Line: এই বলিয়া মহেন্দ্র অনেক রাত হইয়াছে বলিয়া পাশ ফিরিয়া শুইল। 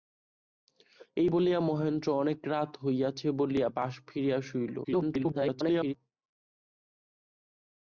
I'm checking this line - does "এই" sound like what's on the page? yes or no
yes